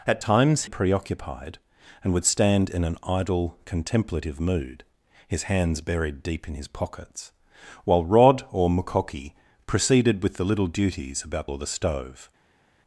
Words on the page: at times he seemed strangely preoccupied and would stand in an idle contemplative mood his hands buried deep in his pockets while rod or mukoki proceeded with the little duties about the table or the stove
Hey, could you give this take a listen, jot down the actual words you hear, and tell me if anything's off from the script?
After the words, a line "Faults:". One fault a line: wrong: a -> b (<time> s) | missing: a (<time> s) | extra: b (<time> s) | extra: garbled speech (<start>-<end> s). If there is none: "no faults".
at times preoccupied and would stand in an idle contemplative mood his hands buried deep in his pockets while rod or mukoki proceeded with the little duties about or the stove
Faults:
missing: he seemed strangely (0.6 s)
missing: the table (11.5 s)